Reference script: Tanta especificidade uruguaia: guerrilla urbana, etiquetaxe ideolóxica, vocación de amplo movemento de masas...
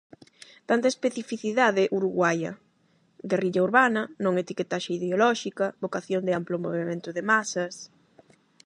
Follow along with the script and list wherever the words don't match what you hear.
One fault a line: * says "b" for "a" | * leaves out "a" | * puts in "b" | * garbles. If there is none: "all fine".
* puts in "non"